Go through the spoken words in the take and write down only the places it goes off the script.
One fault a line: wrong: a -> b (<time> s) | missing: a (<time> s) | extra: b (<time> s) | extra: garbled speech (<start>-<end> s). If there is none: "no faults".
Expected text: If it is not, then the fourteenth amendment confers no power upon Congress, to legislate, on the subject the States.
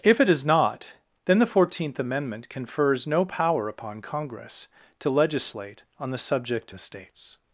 no faults